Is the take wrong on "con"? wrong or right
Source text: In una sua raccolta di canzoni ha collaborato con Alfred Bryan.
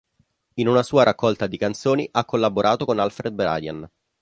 right